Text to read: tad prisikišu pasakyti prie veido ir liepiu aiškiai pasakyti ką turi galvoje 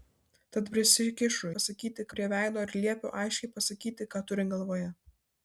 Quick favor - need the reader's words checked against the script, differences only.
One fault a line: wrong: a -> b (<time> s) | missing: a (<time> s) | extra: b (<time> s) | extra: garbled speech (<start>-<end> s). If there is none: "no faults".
no faults